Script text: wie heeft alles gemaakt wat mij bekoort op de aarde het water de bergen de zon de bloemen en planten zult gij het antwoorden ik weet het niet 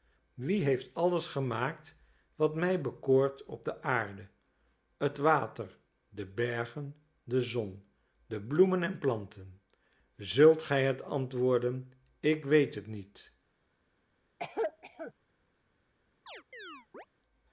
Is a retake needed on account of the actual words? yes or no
no